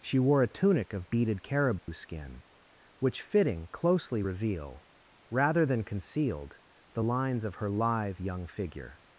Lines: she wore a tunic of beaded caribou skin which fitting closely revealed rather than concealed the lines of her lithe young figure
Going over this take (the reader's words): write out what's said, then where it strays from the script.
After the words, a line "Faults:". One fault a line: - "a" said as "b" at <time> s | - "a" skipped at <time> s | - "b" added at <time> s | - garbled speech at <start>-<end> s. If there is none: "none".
she wore a tunic of beaded caribou skin which fitting closely reveal rather than concealed the lines of her lithe young figure
Faults:
- "revealed" said as "reveal" at 4.2 s